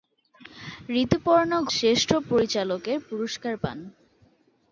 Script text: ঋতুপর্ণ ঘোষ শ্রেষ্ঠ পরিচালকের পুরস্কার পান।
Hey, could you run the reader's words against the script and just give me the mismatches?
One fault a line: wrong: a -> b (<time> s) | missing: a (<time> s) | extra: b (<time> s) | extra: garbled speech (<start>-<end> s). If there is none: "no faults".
missing: ঘোষ (1.5 s)